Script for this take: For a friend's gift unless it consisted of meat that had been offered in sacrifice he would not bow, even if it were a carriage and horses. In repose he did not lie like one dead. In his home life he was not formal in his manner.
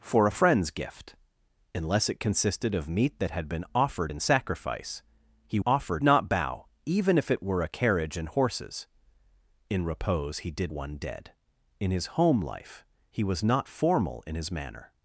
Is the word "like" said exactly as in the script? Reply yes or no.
no